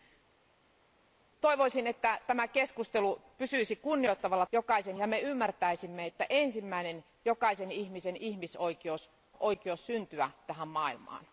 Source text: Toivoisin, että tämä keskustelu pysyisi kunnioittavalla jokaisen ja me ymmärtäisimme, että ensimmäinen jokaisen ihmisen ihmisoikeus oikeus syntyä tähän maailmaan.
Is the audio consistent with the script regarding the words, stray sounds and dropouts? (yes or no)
yes